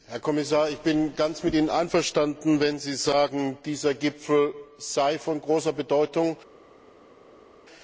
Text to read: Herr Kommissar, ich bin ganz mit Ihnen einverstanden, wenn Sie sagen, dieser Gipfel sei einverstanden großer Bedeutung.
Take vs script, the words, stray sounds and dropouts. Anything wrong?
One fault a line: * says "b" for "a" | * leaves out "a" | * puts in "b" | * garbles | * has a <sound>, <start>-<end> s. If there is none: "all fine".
* says "von" for "einverstanden"